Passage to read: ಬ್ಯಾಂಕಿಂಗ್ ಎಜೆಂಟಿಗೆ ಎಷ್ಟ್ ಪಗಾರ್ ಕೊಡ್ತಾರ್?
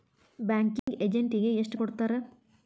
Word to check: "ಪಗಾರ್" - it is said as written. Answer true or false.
false